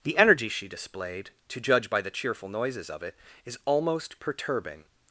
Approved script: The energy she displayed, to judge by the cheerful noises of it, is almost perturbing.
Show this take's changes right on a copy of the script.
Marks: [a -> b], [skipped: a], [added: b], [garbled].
The energy she displayed, to judge by the cheerful noises of it, is almost perturbing.